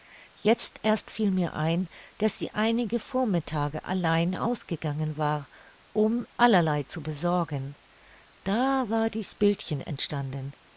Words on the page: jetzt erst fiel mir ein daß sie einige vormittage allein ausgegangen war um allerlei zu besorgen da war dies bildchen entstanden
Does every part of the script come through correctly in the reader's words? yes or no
yes